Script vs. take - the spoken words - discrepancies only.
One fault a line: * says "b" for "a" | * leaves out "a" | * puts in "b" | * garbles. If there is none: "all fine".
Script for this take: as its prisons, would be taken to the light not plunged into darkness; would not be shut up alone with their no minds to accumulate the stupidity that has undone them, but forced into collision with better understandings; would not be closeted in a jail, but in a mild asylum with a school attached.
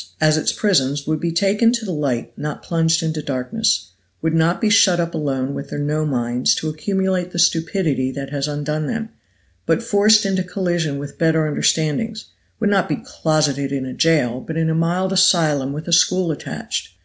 all fine